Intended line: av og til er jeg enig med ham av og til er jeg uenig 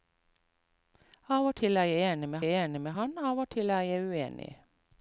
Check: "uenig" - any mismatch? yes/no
no